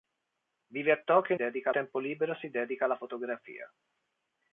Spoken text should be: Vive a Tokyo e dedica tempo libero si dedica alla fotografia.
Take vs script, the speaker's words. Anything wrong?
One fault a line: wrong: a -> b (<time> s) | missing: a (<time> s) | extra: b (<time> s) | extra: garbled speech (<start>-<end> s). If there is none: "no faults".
no faults